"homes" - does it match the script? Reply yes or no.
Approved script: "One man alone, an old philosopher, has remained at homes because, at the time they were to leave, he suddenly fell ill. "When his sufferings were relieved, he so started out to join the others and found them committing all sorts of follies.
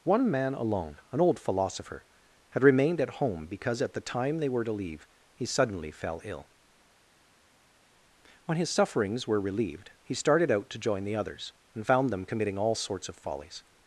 no